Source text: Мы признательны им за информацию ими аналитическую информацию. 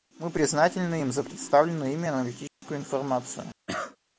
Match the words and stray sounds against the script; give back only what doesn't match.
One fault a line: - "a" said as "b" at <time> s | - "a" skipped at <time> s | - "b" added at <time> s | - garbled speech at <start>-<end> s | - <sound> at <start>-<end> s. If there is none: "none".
- "информацию" said as "представленную" at 1.2 s
- dropout at 2.5-2.6 s
- cough at 3.7-4.0 s